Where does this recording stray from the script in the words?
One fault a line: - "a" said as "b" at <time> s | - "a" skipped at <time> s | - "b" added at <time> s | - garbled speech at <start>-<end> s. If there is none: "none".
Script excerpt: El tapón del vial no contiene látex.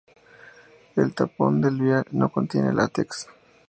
none